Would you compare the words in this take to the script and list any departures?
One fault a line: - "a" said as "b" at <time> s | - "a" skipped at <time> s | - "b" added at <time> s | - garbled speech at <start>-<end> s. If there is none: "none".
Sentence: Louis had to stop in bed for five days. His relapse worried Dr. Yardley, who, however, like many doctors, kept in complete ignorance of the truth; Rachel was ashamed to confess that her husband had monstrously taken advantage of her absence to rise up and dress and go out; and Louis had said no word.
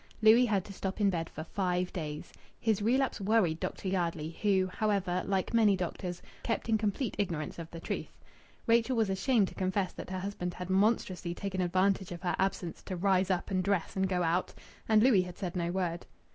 none